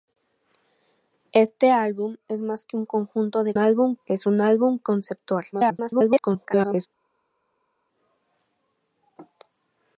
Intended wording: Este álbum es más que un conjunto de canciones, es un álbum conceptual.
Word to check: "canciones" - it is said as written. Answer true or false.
false